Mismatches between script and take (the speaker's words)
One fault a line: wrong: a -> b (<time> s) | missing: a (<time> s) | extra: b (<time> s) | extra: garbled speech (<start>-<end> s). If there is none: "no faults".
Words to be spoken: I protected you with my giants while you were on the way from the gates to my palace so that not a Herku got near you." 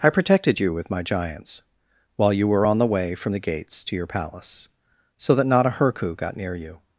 wrong: my -> your (4.0 s)